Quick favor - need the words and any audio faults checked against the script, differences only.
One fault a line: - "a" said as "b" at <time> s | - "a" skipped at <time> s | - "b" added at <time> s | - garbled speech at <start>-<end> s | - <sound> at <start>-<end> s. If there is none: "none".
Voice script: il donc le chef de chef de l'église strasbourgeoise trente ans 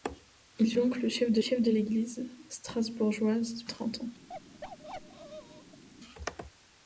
- bark at 4.3-5.8 s